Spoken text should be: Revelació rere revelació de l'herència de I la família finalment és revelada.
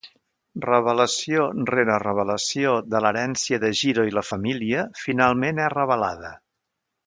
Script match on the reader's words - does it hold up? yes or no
no